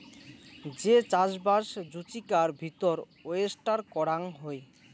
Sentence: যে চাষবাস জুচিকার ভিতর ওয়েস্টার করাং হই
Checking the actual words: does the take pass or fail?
pass